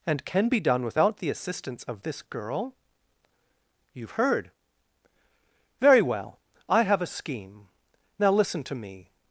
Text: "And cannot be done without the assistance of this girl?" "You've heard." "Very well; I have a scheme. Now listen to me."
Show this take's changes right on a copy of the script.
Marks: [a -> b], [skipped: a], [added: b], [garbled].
"And [cannot -> can] be done without the assistance of this girl?" "You've heard." "Very well; I have a scheme. Now listen to me."